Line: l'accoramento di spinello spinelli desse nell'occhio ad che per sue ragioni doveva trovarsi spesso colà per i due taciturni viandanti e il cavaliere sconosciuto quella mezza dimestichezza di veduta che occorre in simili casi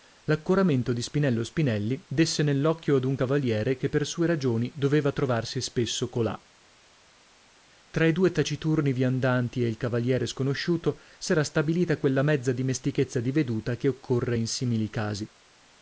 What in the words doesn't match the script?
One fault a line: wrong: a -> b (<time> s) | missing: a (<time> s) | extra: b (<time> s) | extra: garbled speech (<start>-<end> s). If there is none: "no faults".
extra: un cavaliere (3.0 s)
wrong: per -> tra (7.9 s)
extra: s'era stabilita (11.2 s)